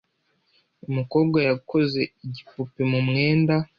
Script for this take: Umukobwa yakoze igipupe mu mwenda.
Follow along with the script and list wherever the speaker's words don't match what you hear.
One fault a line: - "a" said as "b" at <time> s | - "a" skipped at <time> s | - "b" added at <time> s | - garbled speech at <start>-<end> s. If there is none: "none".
none